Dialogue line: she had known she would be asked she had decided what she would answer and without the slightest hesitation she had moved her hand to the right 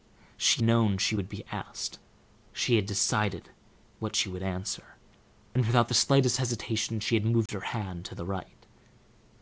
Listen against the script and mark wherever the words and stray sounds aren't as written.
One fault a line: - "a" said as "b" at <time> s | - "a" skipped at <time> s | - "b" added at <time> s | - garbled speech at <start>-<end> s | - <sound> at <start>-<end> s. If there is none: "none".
- "had" skipped at 0.6 s
- dropout at 7.5-7.5 s